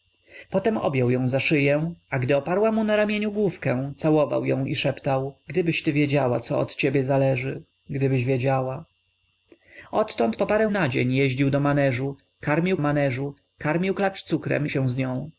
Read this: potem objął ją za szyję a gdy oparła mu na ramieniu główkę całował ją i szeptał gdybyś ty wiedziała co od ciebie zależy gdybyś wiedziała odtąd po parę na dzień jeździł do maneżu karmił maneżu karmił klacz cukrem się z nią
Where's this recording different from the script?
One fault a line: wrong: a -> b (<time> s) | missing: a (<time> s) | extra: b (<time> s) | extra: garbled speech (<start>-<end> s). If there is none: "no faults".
no faults